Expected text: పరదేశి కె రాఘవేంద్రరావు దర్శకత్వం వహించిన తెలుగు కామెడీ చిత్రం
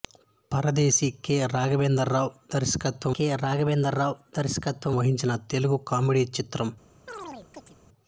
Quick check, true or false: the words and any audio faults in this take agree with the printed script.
false